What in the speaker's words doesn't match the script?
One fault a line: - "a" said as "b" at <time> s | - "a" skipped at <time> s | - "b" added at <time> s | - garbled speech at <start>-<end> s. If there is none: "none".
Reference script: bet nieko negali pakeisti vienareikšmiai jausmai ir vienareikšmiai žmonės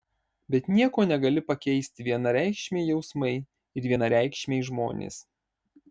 none